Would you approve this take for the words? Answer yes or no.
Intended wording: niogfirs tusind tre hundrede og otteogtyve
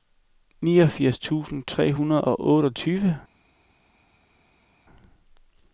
yes